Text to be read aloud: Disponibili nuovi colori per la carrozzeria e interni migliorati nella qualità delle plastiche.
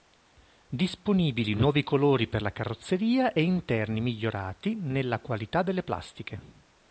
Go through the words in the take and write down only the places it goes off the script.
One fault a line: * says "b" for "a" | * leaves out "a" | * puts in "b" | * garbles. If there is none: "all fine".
all fine